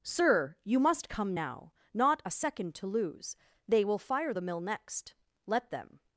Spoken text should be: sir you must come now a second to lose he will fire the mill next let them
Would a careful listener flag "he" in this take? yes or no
yes